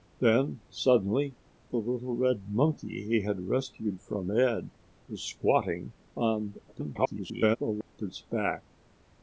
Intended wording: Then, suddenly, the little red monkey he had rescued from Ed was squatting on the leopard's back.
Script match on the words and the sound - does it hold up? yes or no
no